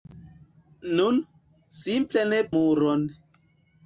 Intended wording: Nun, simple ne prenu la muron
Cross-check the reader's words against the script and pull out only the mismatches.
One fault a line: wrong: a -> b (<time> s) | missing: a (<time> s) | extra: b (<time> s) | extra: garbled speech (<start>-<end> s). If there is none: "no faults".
missing: prenu la (2.4 s)